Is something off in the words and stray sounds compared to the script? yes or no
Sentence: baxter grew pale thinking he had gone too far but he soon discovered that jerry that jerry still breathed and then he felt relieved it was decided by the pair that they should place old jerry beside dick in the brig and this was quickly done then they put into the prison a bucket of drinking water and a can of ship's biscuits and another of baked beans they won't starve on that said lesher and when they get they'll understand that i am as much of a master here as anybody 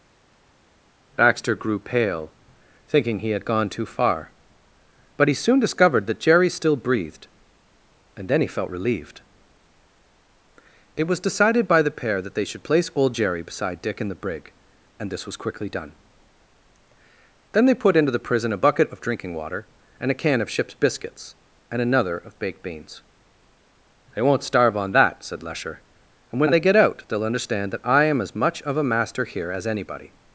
yes